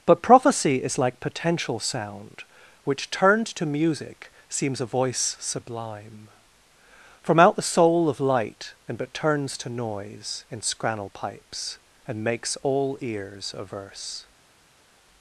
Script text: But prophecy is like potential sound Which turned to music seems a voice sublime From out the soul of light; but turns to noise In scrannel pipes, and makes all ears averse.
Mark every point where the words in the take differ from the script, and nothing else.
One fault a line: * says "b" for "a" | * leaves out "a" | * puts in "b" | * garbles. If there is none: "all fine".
* puts in "and"